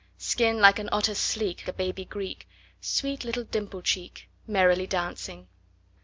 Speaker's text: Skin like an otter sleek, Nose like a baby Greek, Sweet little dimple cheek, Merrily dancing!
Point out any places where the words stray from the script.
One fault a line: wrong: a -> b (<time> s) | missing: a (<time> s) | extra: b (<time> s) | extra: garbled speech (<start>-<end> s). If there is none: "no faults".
missing: Nose like (1.7 s)